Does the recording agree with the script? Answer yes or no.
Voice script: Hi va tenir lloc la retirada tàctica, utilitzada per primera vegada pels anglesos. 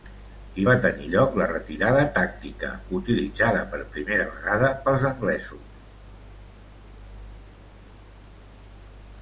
yes